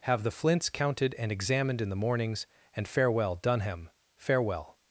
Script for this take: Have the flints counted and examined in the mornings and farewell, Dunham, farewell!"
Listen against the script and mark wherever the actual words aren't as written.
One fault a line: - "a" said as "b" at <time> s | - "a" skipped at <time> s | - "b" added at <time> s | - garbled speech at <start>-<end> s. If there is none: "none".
none